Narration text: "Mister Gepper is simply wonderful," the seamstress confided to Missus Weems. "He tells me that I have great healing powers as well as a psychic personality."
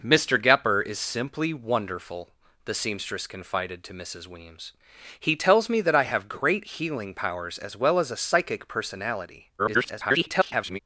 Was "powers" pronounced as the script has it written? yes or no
yes